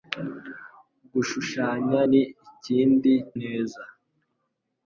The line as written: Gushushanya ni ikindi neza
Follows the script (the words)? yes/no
yes